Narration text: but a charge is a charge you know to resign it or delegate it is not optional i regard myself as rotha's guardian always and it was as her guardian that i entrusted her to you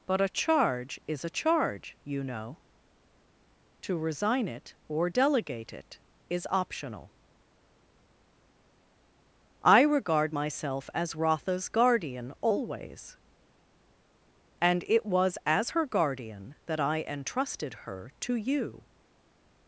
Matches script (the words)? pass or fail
fail